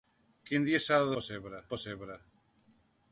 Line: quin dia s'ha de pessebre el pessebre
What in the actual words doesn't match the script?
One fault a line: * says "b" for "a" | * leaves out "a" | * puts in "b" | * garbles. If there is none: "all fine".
all fine